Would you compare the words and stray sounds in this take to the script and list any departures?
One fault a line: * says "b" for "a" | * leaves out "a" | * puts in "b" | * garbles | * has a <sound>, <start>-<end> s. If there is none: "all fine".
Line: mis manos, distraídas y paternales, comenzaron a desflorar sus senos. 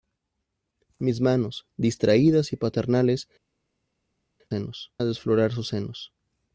* says "senos" for "comenzaron"